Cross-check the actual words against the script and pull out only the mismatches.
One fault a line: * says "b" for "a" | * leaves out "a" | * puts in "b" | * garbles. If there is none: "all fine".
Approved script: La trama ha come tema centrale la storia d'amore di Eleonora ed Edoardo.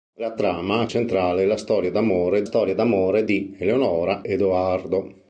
* leaves out "come tema"
* puts in "storia d'amore"
* leaves out "ed"